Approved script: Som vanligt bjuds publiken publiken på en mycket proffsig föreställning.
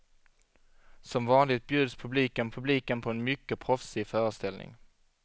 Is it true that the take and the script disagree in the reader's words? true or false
false